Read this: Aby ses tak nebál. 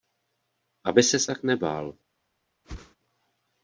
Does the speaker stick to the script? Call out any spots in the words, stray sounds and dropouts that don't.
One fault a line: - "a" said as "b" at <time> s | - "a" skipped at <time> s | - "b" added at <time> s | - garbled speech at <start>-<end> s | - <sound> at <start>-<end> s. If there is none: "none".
- whoosh at 2.6-3.0 s